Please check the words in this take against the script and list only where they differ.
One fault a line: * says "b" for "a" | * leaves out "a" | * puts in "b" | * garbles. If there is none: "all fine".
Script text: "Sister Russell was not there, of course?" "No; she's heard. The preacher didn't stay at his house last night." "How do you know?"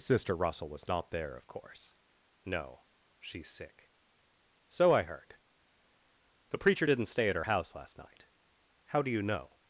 * puts in "sick So I"
* says "her" for "his"